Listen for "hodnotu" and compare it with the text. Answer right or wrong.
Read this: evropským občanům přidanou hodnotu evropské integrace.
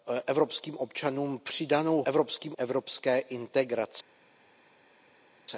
wrong